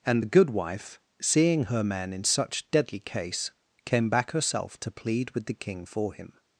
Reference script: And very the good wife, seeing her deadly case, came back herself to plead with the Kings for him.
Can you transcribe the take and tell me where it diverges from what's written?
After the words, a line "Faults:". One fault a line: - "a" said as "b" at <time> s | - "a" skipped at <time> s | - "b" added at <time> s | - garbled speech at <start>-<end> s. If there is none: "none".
And the good wife, seeing her man in such deadly case, came back herself to plead with the King for him.
Faults:
- "very" skipped at 0.2 s
- "man in such" added at 1.8 s
- "Kings" said as "King" at 5.5 s